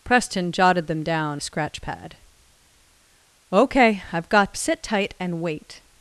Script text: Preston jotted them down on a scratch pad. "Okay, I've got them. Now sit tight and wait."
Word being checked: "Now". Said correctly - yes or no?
no